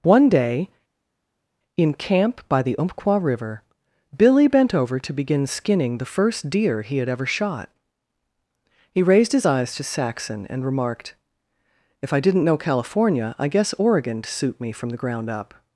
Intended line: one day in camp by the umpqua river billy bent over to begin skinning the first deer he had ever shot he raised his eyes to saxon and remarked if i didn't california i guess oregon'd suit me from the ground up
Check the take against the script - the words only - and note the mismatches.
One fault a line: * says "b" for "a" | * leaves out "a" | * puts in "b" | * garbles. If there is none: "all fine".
* puts in "know"